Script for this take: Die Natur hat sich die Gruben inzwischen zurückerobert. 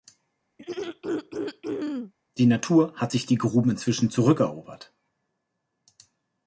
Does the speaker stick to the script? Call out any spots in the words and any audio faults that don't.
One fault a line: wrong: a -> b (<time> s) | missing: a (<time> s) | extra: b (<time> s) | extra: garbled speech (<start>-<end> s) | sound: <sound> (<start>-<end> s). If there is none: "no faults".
sound: throat clearing (0.6-2.1 s)